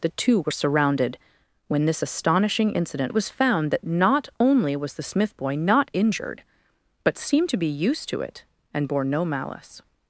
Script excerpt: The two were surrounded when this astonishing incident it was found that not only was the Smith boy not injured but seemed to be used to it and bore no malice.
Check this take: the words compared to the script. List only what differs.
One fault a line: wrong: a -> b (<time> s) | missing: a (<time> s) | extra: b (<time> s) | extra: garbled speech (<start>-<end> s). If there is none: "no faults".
no faults